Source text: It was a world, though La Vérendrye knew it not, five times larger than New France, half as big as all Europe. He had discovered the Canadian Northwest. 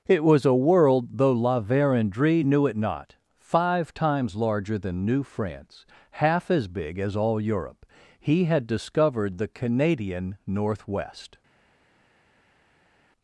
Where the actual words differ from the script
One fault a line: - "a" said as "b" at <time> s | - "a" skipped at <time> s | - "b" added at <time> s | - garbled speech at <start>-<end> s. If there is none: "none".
none